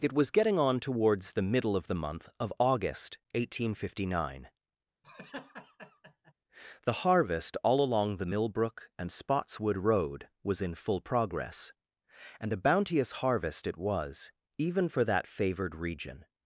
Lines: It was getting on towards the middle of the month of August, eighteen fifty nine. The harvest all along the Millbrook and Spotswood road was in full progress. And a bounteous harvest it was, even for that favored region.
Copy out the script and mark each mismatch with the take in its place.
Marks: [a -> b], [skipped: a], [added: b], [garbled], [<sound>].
It was getting on towards the middle of the month of August, eighteen fifty nine. [laugh] The harvest all along the Millbrook and Spotswood road was in full progress. And a bounteous harvest it was, even for that favored region.